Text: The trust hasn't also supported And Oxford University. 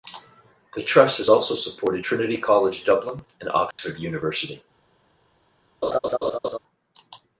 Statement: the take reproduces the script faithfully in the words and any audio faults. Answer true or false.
false